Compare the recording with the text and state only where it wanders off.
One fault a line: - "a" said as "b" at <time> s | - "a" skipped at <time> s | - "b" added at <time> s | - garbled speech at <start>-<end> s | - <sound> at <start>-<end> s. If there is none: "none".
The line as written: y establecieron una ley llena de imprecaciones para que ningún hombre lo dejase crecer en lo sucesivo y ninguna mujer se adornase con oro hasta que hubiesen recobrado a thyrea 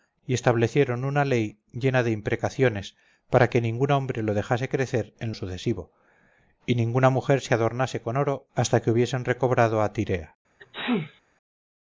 - "lo" skipped at 5.3 s
- sneeze at 10.6-11.2 s